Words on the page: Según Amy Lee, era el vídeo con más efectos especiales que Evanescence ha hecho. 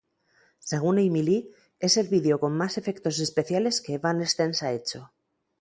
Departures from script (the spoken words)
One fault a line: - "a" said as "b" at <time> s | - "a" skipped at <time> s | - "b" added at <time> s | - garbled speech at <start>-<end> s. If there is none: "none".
- "era" said as "es" at 1.8 s